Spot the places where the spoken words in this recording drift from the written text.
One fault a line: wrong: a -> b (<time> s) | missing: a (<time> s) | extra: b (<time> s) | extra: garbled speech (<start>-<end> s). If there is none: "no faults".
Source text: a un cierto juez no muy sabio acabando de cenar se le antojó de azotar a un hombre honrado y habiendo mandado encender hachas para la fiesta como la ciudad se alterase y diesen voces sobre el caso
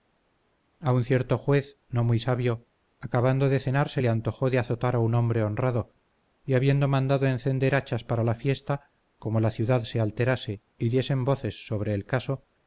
no faults